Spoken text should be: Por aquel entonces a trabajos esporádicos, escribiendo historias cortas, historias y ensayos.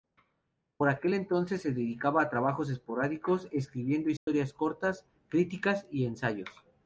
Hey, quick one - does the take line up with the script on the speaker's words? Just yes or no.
no